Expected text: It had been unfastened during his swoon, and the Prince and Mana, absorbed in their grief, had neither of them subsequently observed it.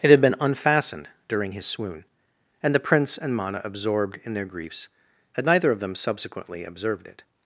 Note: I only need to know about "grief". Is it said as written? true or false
false